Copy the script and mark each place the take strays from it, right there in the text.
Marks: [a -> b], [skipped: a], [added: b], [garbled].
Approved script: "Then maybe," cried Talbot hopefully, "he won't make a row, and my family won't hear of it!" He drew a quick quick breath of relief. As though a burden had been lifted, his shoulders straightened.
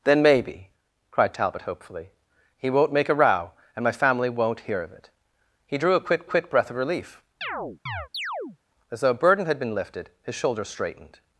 "Then maybe," cried Talbot hopefully, "he won't make a row, and my family won't hear of it!" He drew a quick quick breath of relief. As though a burden had been lifted, his shoulders straightened.